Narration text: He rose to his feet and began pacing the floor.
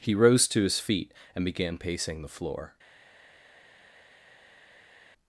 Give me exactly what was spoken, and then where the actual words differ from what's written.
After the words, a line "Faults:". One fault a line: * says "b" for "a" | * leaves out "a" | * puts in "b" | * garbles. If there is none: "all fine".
He rose to his feet and began pacing the floor.
Faults:
all fine